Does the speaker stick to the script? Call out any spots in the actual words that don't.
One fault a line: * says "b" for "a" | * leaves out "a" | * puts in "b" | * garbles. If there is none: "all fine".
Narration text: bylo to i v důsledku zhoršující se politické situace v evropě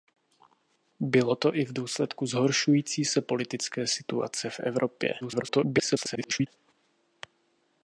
* garbles